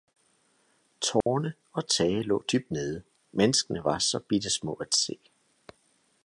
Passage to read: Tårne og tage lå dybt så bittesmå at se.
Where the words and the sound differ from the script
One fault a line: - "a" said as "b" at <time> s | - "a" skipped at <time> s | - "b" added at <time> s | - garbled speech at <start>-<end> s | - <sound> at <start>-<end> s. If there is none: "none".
- dropout at 1.2-1.3 s
- "nede menneskene var" added at 2.7 s